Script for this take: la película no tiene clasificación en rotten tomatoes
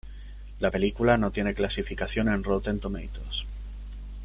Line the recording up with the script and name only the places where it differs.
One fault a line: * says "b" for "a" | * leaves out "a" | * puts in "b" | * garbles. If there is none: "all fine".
all fine